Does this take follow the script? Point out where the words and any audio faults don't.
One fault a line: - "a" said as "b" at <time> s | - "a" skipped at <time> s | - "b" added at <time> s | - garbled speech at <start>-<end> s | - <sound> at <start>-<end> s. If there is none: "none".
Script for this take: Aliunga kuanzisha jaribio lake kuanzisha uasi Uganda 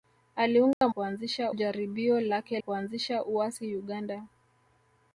- dropout at 0.7-0.8 s